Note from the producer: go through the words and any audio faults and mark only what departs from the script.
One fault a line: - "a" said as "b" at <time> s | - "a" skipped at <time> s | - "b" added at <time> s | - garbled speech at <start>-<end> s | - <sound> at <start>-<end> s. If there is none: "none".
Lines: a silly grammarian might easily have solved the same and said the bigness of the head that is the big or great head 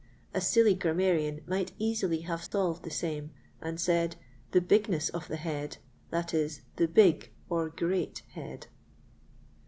- dropout at 2.5-2.5 s